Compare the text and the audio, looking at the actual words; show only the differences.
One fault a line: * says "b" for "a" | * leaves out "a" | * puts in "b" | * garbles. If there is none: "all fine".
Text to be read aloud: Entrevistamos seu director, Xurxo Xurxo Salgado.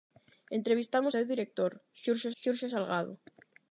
all fine